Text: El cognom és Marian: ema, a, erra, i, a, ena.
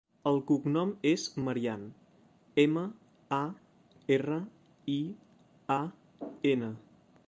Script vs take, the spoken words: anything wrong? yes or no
no